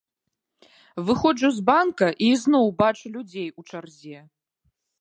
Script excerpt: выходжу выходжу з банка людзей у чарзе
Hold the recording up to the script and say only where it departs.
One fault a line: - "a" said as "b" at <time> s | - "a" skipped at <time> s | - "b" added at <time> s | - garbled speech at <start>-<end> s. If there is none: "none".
- "выходжу" skipped at 1.5 s
- "і ізноў бачу" added at 2.2 s